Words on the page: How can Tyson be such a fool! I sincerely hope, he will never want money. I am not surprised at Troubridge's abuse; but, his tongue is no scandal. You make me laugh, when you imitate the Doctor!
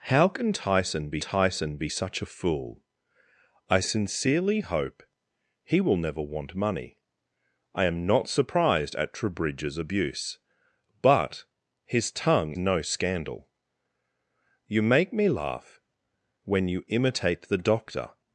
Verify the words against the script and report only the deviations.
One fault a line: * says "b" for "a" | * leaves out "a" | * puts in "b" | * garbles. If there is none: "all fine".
* puts in "Tyson be"
* leaves out "is"